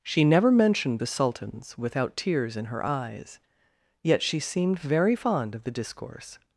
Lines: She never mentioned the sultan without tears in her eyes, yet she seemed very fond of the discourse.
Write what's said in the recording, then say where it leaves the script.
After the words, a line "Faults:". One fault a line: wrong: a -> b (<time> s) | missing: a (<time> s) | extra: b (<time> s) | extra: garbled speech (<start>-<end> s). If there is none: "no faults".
She never mentioned the sultans without tears in her eyes, yet she seemed very fond of the discourse.
Faults:
wrong: sultan -> sultans (1.1 s)